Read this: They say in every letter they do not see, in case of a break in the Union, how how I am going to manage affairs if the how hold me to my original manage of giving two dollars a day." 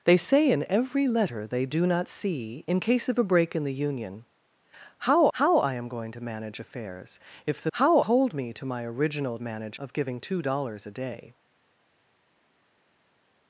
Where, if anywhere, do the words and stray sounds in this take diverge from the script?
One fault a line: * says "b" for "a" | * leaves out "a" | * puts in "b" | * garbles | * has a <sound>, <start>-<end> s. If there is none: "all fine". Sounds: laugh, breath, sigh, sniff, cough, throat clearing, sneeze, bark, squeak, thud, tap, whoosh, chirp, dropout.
all fine